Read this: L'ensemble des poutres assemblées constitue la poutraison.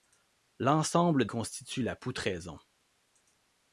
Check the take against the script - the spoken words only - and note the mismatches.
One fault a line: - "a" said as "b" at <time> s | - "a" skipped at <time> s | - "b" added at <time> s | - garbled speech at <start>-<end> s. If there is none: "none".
- "des poutres assemblées" skipped at 1.2 s